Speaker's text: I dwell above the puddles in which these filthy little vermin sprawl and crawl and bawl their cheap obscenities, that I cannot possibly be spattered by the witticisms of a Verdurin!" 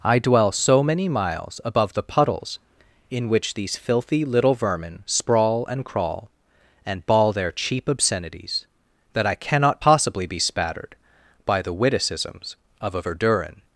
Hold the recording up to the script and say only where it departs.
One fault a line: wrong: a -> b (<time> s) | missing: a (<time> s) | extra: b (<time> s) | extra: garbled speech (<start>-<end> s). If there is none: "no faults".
extra: so many miles (0.5 s)